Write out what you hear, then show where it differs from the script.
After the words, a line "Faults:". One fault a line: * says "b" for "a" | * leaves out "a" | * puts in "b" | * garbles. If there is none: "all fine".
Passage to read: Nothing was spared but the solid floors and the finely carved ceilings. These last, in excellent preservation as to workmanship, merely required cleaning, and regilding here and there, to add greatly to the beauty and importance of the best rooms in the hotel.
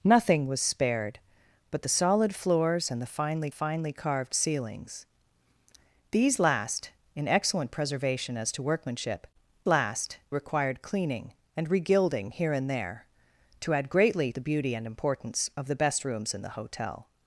Nothing was spared but the solid floors and the finely finely carved ceilings. These last, in excellent preservation as to workmanship, last required cleaning, and regilding here and there, to add greatly the beauty and importance of the best rooms in the hotel.
Faults:
* puts in "finely"
* says "last" for "merely"
* leaves out "to"